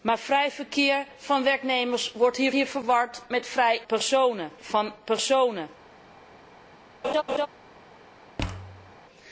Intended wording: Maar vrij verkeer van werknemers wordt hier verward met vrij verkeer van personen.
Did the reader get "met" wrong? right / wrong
right